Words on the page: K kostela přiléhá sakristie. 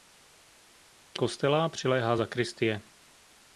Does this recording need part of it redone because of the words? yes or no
no